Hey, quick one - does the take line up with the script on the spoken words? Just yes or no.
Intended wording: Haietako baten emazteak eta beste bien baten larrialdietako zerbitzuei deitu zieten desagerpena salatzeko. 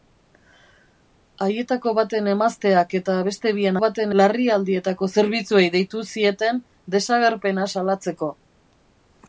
yes